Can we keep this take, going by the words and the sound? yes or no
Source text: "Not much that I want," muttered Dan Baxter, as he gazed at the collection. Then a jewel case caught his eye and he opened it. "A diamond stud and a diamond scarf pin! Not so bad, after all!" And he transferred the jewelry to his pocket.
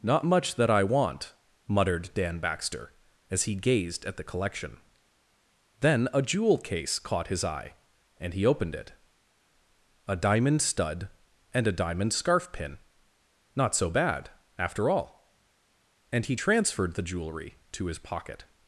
yes